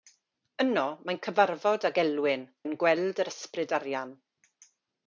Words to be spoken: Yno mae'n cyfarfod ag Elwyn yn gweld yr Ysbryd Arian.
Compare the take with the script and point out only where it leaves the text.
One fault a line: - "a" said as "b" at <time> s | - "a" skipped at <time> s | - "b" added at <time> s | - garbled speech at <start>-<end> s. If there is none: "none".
none